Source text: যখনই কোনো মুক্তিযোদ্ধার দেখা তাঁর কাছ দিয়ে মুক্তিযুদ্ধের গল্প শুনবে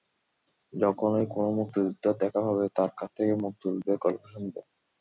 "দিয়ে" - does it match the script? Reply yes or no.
no